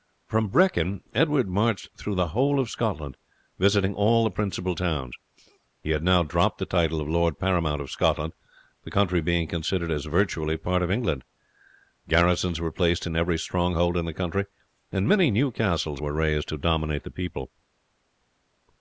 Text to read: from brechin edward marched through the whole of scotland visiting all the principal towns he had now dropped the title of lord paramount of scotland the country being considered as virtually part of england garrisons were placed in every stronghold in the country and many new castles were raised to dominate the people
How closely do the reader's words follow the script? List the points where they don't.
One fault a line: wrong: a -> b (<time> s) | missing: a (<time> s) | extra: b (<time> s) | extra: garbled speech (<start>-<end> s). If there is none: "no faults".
no faults